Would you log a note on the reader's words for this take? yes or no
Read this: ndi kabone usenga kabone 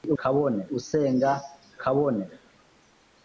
no